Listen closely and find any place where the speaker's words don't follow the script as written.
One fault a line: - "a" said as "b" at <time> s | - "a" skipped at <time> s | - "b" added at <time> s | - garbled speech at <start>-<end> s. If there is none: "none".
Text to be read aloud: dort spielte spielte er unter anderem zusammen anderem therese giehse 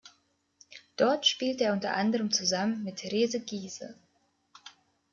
- "spielte" skipped at 1.6 s
- "anderem" said as "mit" at 2.8 s